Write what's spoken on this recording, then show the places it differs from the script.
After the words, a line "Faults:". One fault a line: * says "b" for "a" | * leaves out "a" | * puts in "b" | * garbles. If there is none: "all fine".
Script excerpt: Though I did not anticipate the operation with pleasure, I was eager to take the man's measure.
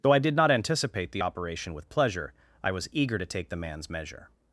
Though I did not anticipate the operation with pleasure, I was eager to take the man's measure.
Faults:
all fine